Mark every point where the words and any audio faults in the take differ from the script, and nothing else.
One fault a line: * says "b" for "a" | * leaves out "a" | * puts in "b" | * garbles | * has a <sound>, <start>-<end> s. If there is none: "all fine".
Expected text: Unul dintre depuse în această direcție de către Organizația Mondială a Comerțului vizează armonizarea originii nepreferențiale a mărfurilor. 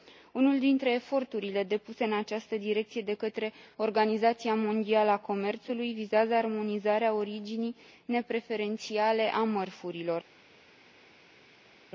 * puts in "eforturile"